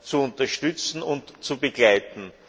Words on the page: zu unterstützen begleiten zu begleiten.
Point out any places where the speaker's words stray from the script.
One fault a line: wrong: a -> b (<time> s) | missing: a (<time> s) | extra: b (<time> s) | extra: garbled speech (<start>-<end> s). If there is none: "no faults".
wrong: begleiten -> und (1.0 s)